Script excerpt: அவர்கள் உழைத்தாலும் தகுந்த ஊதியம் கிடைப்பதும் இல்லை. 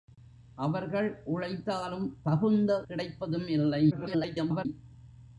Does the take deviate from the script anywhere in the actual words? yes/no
yes